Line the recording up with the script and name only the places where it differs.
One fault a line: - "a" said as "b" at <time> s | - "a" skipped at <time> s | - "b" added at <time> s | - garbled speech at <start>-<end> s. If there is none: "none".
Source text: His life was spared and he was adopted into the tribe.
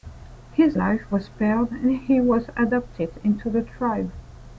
none